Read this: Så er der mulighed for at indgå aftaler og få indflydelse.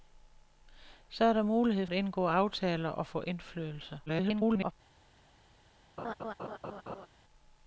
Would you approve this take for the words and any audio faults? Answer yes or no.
no